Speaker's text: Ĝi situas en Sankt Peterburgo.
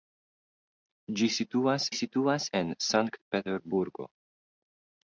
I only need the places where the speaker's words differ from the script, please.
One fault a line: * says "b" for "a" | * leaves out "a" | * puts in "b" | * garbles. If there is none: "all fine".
* puts in "situas"